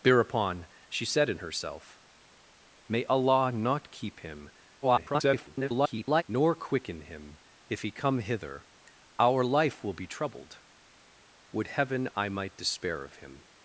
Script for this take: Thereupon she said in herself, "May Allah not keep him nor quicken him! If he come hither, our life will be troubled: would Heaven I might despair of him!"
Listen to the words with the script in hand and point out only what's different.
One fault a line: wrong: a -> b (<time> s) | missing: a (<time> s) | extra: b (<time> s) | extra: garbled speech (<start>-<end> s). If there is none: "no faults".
extra: garbled speech (4.8-6.2 s)